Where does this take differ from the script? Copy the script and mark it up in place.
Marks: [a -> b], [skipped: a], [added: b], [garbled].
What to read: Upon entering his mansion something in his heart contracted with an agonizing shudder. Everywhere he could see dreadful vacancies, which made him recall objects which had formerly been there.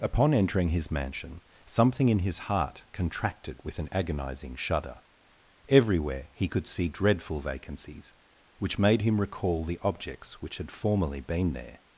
Upon entering his mansion something in his heart contracted with an agonizing shudder. Everywhere he could see dreadful vacancies, which made him recall [added: the] objects which had formerly been there.